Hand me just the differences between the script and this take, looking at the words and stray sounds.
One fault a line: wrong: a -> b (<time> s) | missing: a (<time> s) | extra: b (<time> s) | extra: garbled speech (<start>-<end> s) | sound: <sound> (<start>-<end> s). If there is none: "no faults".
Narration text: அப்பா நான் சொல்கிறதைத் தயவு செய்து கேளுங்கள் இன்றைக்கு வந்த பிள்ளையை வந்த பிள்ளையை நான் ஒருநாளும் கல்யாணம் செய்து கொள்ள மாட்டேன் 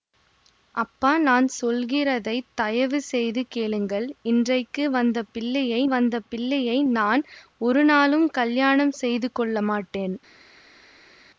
no faults